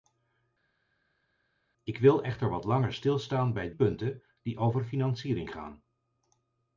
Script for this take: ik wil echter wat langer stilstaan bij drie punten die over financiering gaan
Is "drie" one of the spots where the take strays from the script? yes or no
yes